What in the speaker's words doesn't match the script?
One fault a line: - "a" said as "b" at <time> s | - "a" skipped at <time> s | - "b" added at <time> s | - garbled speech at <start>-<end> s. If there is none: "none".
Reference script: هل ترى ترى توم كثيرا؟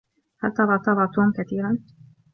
none